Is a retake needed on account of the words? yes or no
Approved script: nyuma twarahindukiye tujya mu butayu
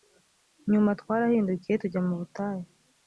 no